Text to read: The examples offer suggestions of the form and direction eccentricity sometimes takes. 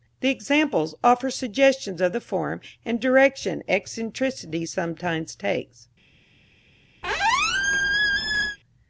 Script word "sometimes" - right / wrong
right